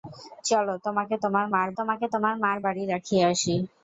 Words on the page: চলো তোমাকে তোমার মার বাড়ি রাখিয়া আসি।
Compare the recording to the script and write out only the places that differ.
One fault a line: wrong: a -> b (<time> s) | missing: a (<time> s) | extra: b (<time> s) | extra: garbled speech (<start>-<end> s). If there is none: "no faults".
extra: তোমাকে তোমার মার (1.8 s)